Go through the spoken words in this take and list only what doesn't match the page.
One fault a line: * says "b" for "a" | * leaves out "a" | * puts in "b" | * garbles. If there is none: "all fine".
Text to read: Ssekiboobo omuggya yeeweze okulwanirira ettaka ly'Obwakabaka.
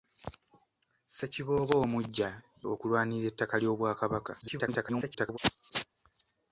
* leaves out "yeeweze"
* garbles